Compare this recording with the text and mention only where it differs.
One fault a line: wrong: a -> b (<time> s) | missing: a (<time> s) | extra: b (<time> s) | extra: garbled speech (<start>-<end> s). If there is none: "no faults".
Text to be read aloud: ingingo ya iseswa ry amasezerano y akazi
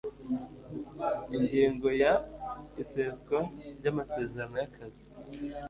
no faults